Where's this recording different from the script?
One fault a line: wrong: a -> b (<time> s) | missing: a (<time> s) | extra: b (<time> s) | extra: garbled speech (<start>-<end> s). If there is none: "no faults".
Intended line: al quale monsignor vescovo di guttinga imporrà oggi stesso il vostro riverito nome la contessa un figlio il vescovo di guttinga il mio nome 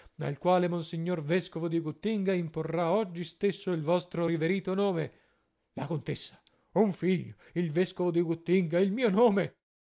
no faults